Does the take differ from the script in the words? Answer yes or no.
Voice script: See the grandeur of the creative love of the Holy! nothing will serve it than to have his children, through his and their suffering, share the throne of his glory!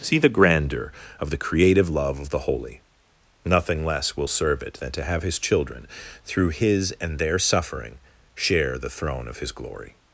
yes